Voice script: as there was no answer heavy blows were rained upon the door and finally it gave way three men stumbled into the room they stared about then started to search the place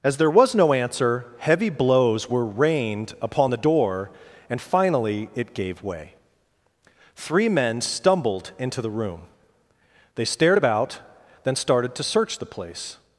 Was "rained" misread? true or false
false